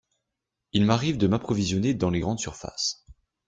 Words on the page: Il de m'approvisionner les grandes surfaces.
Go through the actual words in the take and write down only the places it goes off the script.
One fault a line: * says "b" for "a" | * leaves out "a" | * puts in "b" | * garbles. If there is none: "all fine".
* puts in "m'arrive"
* puts in "dans"